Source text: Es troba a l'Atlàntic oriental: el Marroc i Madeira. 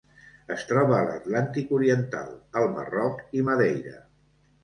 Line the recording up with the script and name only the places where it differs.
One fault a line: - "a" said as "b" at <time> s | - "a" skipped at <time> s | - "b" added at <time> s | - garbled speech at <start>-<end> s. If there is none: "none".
none